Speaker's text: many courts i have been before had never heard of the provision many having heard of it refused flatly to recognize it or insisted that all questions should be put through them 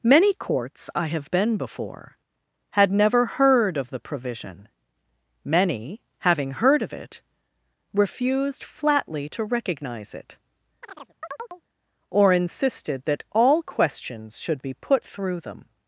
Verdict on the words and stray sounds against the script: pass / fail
fail